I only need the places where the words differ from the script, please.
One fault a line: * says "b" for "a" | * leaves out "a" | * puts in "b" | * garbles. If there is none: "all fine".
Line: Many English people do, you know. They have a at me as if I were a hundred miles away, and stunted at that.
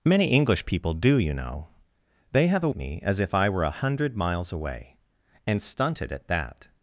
all fine